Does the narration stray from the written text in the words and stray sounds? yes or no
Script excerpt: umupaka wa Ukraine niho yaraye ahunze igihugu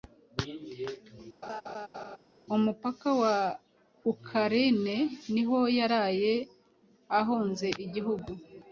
yes